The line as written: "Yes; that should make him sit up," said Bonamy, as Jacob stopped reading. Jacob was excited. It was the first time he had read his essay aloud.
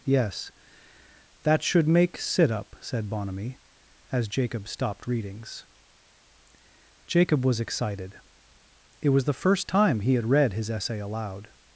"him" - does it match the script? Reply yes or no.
no